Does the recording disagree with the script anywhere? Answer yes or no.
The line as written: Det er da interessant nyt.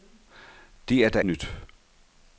yes